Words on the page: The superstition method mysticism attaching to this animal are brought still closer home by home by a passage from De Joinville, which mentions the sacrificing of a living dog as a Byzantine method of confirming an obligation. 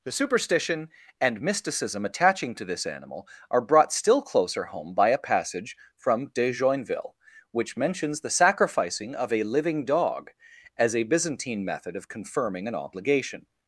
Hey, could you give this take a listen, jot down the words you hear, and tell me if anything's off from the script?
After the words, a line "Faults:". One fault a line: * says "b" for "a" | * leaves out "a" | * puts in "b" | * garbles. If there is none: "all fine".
The superstition and mysticism attaching to this animal are brought still closer home by a passage from De Joinville, which mentions the sacrificing of a living dog as a Byzantine method of confirming an obligation.
Faults:
* says "and" for "method"
* leaves out "home by"